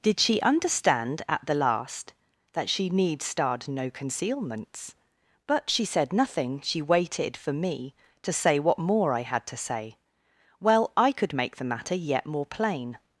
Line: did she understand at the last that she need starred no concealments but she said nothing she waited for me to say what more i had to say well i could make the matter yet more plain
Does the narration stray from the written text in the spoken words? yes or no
no